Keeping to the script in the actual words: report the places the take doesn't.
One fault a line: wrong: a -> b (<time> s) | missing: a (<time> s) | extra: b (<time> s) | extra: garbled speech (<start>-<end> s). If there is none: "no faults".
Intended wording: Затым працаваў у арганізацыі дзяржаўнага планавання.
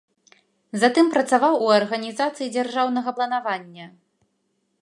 no faults